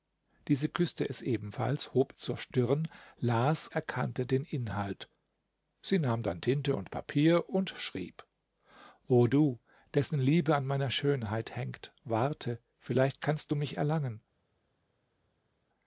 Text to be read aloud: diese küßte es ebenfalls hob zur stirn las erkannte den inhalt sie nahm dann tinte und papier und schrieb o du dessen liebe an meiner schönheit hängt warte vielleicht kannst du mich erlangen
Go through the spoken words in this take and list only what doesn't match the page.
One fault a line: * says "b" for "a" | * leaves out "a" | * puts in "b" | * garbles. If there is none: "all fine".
all fine